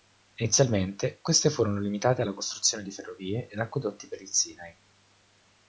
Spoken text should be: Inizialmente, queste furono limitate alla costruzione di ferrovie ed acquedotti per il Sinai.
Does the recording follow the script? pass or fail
pass